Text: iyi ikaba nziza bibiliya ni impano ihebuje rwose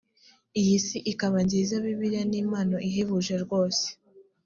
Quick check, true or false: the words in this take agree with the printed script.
false